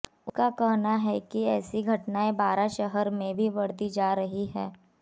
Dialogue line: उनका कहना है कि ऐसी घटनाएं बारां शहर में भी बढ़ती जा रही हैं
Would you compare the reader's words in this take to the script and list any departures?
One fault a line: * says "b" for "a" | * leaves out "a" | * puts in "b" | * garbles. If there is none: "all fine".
all fine